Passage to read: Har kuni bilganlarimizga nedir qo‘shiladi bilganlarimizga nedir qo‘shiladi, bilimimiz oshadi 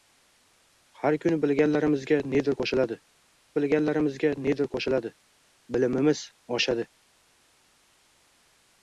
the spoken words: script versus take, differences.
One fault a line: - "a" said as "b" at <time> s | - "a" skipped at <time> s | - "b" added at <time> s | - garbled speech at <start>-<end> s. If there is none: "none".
none